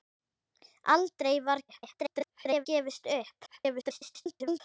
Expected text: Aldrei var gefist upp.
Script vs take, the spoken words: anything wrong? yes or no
yes